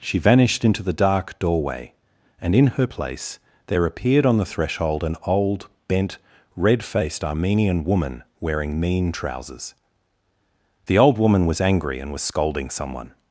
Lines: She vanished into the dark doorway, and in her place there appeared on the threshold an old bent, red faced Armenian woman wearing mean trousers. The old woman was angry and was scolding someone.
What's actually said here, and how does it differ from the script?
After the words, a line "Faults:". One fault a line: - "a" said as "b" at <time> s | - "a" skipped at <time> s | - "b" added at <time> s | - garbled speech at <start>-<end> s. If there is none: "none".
She vanished into the dark doorway, and in her place there appeared on the threshold an old bent, red faced Armenian woman wearing mean trousers. The old woman was angry and was scolding someone.
Faults:
none